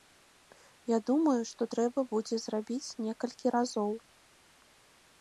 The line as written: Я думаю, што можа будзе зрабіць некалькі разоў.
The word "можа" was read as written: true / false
false